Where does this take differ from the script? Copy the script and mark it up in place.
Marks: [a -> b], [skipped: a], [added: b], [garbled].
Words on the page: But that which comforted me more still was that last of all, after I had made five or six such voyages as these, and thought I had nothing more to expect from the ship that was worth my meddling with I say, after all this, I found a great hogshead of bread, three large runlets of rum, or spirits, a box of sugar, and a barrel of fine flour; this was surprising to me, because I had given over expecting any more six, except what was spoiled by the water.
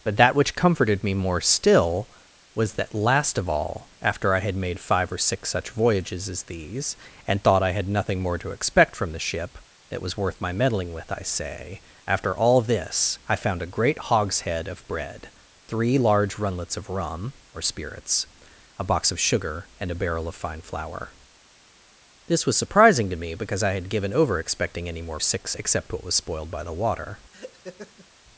But that which comforted me more still was that last of all, after I had made five or six such voyages as these, and thought I had nothing more to expect from the ship that was worth my meddling with I say, after all this, I found a great hogshead of bread, three large runlets of rum, or spirits, a box of sugar, and a barrel of fine flour; this was surprising to me, because I had given over expecting any more six, except what was spoiled by the water.